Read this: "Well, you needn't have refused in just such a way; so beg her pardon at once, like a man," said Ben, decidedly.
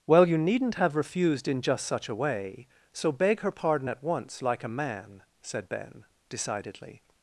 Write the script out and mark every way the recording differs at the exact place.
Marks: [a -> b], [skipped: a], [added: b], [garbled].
"Well, you needn't have refused in just such a way; so beg her pardon at once, like a man," said Ben, decidedly.